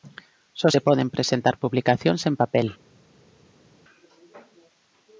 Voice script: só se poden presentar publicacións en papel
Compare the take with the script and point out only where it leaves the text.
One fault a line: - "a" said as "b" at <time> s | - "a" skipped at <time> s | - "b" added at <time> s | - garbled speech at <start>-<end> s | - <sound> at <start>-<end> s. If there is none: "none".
none